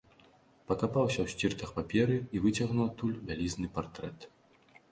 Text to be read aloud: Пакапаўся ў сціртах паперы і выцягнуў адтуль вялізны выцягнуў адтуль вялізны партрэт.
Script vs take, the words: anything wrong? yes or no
yes